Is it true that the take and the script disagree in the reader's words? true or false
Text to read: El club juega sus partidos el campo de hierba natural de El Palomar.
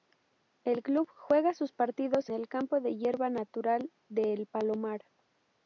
false